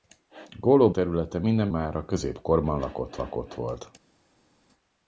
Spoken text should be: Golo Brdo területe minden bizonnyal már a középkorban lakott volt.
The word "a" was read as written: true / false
true